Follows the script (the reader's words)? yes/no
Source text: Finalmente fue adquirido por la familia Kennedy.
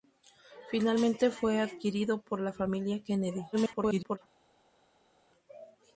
no